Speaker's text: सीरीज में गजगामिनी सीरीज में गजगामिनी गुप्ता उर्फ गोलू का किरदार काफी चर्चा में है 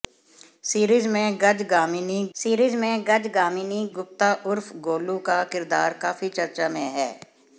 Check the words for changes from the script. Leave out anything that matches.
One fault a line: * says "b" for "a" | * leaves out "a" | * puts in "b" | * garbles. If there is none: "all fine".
all fine